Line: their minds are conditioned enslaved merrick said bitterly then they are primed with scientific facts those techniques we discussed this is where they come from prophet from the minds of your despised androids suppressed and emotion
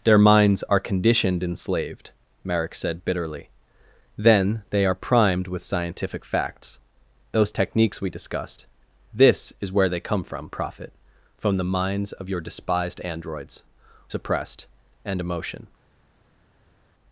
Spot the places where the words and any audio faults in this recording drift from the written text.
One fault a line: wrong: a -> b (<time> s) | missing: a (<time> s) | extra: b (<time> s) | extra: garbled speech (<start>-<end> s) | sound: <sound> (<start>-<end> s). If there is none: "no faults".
no faults